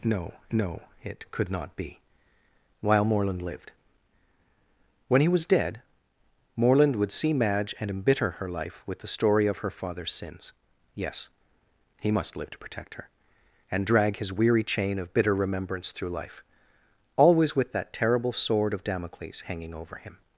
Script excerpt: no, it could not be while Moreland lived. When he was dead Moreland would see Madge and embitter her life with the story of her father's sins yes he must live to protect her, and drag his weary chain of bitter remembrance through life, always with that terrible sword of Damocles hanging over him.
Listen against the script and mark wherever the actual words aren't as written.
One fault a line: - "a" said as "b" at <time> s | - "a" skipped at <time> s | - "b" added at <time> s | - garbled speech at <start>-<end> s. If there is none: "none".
- "no" added at 0.5 s